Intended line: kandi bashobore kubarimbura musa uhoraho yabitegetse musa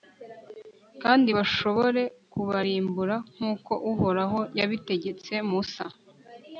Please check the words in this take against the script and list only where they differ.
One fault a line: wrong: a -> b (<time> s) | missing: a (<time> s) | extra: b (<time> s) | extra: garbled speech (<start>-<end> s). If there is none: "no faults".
wrong: musa -> nk'uko (3.3 s)